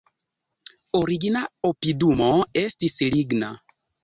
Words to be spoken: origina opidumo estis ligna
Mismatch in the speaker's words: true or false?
false